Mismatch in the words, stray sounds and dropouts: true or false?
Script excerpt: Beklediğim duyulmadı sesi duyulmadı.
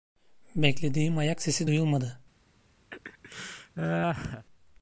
true